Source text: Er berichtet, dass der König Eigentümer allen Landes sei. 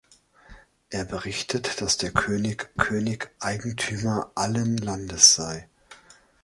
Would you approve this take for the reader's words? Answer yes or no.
no